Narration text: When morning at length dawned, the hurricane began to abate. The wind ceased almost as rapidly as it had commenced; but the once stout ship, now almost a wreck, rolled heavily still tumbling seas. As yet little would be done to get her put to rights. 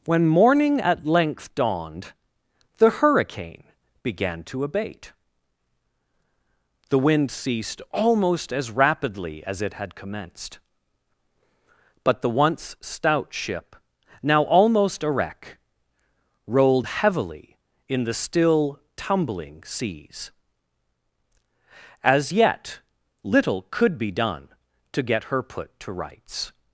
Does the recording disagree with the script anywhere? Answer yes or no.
yes